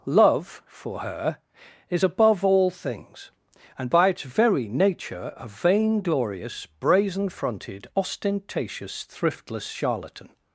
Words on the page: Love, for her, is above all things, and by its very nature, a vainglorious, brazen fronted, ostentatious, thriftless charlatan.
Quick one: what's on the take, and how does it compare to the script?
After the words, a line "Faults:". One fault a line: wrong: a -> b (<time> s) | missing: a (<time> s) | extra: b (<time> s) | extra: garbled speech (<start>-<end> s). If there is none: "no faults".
Love, for her, is above all things, and by its very nature, a vainglorious, brazen fronted, ostentatious, thriftless charlatan.
Faults:
no faults